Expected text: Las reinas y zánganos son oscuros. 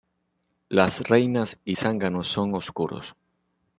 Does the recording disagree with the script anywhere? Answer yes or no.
no